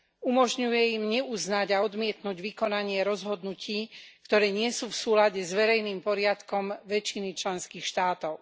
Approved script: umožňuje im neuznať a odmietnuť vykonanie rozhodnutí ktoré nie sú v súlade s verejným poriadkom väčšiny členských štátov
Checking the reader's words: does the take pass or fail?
pass